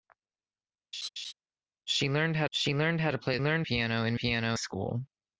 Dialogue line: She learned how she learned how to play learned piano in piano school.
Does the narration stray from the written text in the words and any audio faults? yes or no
yes